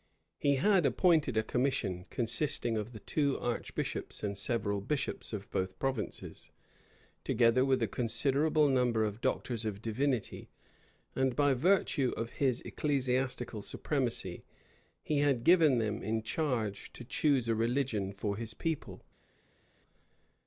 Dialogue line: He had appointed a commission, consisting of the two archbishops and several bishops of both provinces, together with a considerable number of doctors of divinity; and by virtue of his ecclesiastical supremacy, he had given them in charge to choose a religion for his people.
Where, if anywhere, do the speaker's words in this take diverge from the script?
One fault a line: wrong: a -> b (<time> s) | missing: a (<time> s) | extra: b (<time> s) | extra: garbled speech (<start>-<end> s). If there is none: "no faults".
no faults